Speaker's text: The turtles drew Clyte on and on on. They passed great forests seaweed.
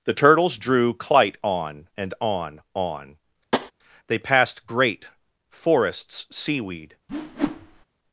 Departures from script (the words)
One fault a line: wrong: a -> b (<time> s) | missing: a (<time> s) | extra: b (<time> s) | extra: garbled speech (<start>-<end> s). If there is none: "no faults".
no faults